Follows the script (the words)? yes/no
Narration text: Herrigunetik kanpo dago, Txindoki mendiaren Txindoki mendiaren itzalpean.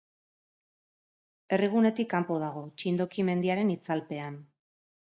no